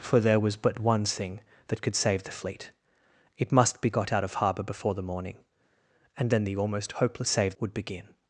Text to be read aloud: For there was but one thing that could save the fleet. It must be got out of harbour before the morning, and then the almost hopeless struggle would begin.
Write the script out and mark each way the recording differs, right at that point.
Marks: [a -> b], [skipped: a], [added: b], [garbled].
For there was but one thing that could save the fleet. It must be got out of harbour before the morning, and then the almost hopeless [struggle -> save] would begin.